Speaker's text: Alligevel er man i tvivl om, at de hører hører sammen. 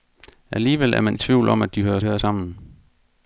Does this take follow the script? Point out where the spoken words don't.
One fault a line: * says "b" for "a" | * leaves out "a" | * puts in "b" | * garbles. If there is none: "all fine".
all fine